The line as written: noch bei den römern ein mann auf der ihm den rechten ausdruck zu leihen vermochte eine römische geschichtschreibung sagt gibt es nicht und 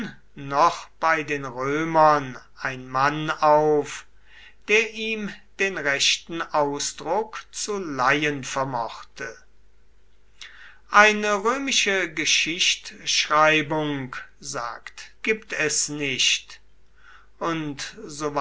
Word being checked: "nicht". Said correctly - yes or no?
yes